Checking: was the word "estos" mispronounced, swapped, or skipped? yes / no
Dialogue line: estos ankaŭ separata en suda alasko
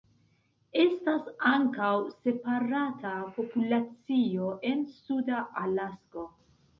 yes